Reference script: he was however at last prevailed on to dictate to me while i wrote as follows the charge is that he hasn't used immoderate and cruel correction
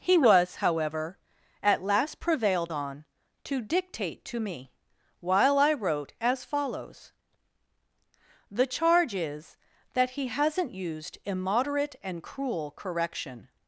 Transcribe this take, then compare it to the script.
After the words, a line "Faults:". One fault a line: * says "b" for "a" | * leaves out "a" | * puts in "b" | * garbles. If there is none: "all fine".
he was however at last prevailed on to dictate to me while i wrote as follows the charge is that he hasn't used immoderate and cruel correction
Faults:
all fine